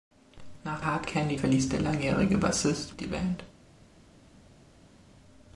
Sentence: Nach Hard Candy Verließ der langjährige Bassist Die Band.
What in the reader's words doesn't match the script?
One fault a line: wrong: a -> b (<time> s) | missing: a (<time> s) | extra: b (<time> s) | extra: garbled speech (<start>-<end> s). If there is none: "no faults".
no faults